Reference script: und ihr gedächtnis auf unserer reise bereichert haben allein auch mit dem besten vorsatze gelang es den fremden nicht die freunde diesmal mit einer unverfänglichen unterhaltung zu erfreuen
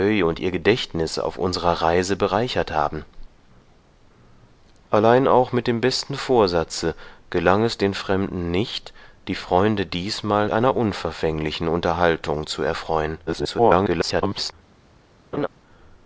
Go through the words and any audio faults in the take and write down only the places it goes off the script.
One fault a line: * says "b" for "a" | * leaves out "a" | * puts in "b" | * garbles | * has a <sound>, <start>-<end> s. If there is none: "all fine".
* leaves out "mit"
* garbles
* has a laugh, 15.3-15.5 s